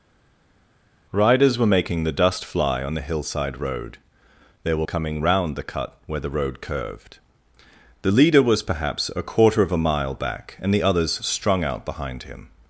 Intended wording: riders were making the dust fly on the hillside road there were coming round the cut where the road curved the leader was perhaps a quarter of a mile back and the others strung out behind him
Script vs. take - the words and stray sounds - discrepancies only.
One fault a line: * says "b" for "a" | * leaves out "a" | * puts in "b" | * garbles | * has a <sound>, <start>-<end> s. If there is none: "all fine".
all fine